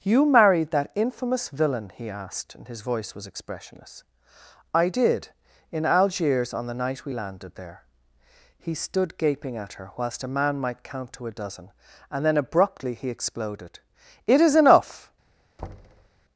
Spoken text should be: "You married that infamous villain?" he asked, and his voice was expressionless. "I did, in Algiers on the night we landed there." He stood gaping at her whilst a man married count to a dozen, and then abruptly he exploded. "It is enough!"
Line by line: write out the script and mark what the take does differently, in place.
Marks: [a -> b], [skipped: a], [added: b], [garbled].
"You married that infamous villain?" he asked, and his voice was expressionless. "I did, in Algiers on the night we landed there." He stood gaping at her whilst a man [married -> might] count to a dozen, and then abruptly he exploded. "It is enough!"